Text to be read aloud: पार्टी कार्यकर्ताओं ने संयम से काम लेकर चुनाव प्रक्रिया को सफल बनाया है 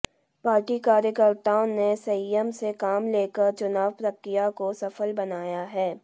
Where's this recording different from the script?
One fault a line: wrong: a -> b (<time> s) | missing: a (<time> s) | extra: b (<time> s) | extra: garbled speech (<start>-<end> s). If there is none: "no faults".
no faults